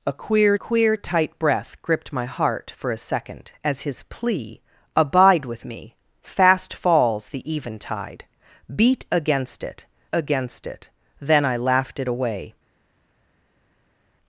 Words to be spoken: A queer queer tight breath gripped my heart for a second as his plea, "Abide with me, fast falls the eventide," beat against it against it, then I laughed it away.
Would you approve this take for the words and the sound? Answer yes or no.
yes